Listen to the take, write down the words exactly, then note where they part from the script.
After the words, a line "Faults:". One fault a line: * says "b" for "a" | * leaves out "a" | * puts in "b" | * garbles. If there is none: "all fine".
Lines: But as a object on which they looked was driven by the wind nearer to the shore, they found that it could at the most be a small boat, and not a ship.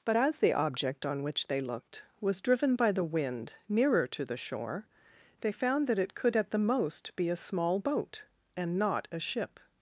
But as the object on which they looked was driven by the wind nearer to the shore, they found that it could at the most be a small boat, and not a ship.
Faults:
* says "the" for "a"